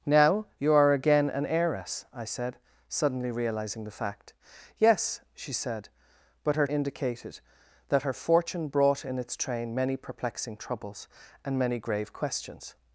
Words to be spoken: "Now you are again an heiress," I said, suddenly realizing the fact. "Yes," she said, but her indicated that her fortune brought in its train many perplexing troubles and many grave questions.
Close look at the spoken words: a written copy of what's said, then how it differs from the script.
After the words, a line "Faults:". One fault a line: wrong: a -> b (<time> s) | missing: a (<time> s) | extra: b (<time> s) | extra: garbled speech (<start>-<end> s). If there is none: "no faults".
"Now you are again an heiress," I said, suddenly realizing the fact. "Yes," she said, but her indicated that her fortune brought in its train many perplexing troubles and many grave questions.
Faults:
no faults